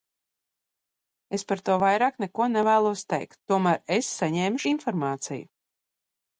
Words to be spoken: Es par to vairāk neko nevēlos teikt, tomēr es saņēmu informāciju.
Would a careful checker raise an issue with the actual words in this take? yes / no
no